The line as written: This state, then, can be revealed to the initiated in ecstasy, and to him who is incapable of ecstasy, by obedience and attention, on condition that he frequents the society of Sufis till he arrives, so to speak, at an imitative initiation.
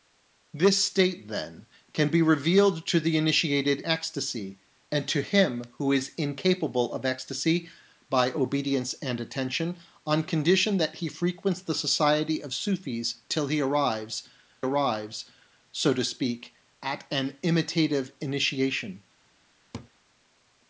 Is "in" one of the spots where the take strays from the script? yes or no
yes